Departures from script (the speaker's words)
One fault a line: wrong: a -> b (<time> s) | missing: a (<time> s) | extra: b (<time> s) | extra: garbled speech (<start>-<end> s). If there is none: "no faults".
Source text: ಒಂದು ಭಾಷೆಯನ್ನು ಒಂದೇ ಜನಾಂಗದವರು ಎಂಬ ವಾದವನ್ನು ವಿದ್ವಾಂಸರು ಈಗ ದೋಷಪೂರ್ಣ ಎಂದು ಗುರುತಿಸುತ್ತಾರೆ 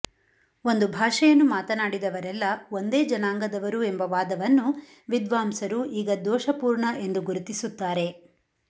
extra: ಮಾತನಾಡಿದವರೆಲ್ಲ (1.5 s)